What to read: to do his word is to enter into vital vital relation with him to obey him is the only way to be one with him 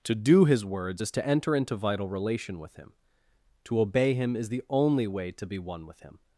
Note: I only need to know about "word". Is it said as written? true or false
false